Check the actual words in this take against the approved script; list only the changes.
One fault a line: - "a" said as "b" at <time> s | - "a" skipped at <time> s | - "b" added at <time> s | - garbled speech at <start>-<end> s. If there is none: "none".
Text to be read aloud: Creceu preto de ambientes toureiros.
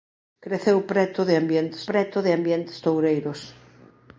- "preto de ambientes" added at 1.9 s